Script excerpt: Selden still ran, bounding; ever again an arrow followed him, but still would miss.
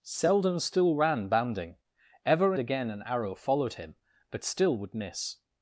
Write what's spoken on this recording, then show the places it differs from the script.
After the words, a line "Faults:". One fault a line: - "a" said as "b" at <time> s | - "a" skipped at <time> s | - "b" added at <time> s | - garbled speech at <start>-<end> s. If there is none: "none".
Selden still ran, bounding; ever again an arrow followed him, but still would miss.
Faults:
none